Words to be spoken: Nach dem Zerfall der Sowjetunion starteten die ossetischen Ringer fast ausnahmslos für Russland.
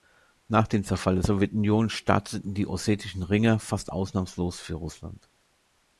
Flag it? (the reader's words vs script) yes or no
no